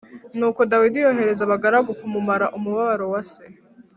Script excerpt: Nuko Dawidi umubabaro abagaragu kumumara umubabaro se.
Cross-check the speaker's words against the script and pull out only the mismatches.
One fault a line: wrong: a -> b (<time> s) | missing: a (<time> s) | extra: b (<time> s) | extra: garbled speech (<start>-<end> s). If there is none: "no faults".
wrong: umubabaro -> yohereza (1.1 s)
extra: wa (3.1 s)